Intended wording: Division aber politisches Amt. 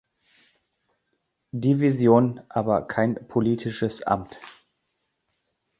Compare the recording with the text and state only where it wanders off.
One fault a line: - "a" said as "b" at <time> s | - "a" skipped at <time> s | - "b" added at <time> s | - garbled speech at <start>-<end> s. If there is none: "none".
- "kein" added at 2.9 s